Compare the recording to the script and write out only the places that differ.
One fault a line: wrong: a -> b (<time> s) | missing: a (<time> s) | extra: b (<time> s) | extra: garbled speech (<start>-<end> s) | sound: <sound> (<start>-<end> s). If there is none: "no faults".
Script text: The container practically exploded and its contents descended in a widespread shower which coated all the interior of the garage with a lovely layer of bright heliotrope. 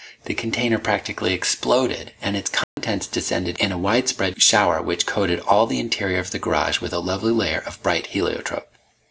sound: dropout (2.6-2.8 s)